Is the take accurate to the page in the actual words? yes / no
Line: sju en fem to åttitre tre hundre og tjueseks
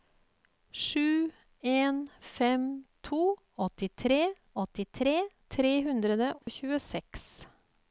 no